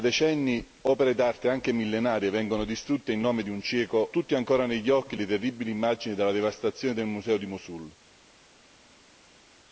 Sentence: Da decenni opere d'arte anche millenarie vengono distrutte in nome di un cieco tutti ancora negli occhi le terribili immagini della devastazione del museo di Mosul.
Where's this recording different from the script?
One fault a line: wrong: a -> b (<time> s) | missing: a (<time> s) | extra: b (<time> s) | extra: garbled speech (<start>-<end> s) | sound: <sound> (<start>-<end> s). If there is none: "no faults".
no faults